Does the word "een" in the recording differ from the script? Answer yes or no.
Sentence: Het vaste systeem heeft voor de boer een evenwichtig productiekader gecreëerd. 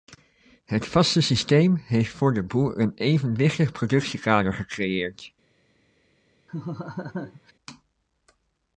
no